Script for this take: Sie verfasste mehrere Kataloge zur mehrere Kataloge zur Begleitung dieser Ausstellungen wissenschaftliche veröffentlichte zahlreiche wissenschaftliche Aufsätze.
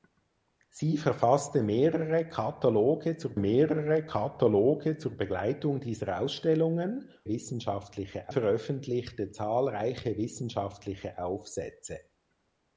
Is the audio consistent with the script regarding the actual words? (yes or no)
yes